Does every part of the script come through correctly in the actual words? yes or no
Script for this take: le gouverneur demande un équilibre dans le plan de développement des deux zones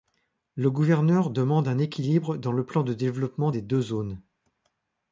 yes